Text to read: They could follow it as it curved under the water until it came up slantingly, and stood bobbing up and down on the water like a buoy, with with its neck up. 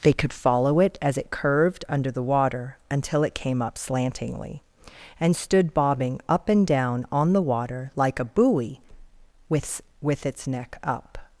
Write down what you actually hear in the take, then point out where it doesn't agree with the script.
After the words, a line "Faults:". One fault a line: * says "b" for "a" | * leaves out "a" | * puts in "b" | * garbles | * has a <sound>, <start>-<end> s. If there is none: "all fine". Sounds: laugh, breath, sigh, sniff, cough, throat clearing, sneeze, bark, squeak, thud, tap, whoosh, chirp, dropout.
They could follow it as it curved under the water until it came up slantingly, and stood bobbing up and down on the water like a buoy, with with its neck up.
Faults:
all fine